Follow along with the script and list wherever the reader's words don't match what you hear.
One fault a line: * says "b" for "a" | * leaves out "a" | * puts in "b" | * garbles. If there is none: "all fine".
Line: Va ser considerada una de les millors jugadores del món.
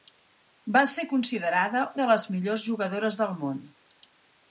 * leaves out "una"